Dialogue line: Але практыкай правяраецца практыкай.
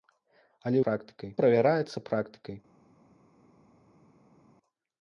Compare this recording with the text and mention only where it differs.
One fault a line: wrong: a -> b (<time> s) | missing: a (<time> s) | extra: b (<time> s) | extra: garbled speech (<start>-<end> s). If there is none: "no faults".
no faults